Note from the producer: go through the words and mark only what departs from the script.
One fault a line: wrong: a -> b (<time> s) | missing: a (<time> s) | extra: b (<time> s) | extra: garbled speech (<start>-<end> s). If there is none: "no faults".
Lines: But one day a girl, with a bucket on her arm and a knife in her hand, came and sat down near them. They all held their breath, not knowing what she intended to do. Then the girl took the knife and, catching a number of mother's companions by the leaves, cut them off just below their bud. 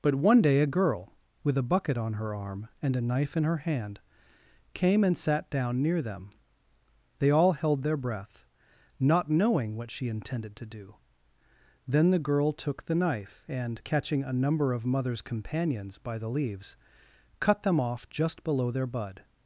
no faults